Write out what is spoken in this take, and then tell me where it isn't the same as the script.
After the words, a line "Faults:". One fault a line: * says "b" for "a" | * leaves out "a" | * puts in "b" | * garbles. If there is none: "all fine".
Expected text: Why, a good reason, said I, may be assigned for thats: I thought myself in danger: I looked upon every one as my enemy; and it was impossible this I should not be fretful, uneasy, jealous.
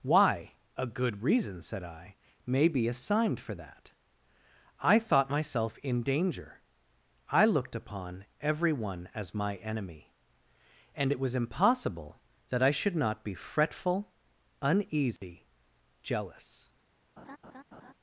Why, a good reason, said I, may be assigned for that: I thought myself in danger: I looked upon every one as my enemy; and it was impossible that I should not be fretful, uneasy, jealous.
Faults:
* says "that" for "thats"
* says "that" for "this"